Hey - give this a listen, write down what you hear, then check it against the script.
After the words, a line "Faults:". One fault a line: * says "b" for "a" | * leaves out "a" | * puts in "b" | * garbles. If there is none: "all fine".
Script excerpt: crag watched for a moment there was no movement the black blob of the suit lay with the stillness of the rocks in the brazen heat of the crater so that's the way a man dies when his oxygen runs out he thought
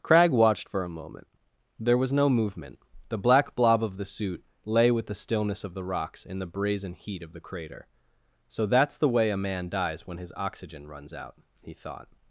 crag watched for a moment there was no movement the black blob of the suit lay with the stillness of the rocks in the brazen heat of the crater so that's the way a man dies when his oxygen runs out he thought
Faults:
all fine